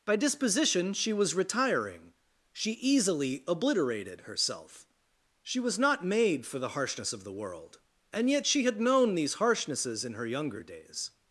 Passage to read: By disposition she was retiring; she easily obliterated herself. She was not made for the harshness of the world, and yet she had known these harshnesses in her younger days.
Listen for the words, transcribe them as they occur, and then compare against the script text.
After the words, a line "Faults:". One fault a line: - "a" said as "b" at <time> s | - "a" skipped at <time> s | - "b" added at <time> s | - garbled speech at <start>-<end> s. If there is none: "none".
By disposition she was retiring; she easily obliterated herself. She was not made for the harshness of the world, and yet she had known these harshnesses in her younger days.
Faults:
none